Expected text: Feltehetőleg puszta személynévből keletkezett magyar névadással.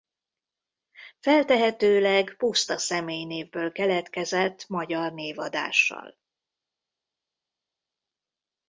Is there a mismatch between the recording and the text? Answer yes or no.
no